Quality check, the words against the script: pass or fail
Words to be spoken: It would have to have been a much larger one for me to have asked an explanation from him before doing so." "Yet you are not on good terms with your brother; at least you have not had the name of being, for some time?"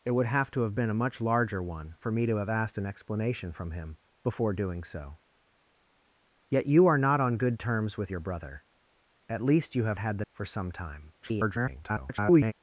fail